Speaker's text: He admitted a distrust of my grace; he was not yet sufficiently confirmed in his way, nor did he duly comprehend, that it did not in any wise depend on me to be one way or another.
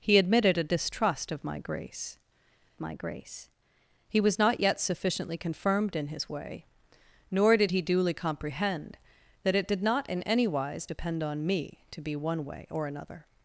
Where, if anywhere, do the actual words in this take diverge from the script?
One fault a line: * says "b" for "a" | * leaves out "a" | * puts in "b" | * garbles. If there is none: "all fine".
* puts in "my grace"